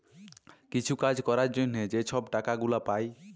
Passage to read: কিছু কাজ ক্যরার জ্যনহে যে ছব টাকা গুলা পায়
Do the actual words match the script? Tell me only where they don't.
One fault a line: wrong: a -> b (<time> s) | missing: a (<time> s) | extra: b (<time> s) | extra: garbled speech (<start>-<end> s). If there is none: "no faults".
no faults